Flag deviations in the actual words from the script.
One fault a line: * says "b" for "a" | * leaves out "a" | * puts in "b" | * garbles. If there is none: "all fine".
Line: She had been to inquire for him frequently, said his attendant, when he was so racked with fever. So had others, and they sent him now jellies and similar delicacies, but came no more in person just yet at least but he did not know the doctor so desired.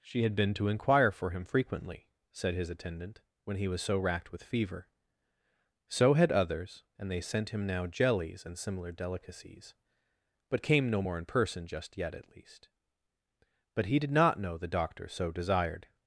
all fine